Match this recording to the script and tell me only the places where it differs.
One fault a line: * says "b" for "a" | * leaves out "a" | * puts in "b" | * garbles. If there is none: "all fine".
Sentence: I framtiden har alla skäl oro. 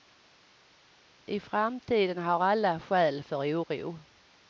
* puts in "för"